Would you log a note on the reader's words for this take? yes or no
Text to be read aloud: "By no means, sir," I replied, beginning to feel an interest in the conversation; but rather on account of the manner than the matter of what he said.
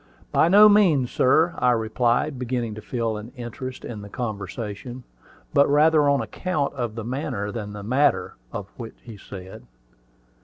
no